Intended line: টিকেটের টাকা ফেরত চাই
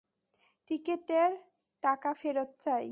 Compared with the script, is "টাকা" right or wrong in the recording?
right